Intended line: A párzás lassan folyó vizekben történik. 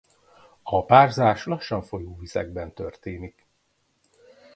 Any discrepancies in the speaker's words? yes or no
no